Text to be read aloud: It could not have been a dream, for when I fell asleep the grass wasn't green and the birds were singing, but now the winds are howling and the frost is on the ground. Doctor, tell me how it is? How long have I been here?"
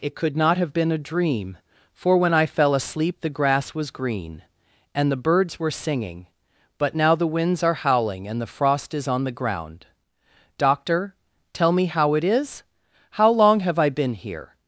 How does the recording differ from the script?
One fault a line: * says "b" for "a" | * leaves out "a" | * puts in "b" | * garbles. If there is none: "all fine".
* says "was" for "wasn't"